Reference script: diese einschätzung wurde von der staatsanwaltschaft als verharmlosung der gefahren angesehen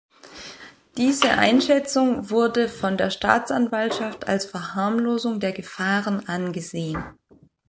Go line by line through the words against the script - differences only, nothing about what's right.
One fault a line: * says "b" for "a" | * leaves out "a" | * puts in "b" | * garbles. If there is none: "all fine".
all fine